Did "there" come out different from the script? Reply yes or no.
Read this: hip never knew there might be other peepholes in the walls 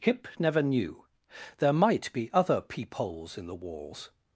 no